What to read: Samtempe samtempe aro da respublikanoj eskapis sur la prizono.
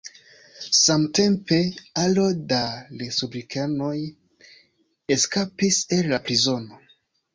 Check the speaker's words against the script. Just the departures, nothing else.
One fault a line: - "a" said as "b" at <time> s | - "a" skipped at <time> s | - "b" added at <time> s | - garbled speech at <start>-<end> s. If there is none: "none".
- "samtempe" skipped at 1.6 s
- "sur" said as "el" at 6.0 s